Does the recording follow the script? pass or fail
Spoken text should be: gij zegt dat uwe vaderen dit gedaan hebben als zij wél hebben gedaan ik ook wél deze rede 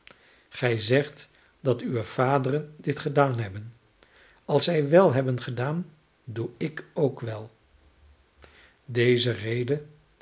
fail